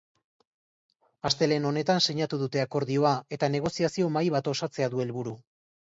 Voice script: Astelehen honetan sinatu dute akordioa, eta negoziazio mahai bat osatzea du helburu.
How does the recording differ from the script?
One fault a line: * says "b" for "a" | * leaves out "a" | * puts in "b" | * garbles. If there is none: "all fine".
all fine